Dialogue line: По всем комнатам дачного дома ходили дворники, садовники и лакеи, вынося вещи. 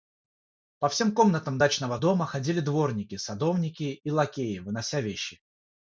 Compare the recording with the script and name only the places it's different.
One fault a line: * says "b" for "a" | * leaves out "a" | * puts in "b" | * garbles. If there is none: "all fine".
all fine